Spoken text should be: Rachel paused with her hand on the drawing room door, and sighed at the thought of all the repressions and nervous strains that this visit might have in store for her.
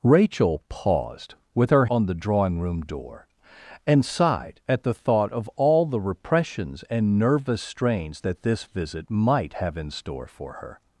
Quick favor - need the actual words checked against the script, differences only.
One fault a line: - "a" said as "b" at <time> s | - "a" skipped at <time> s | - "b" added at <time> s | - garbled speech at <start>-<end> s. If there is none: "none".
- "hand" skipped at 1.9 s